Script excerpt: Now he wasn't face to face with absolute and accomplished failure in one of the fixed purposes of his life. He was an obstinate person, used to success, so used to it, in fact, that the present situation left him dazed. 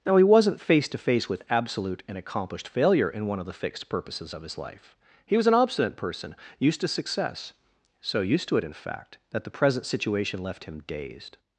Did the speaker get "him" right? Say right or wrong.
right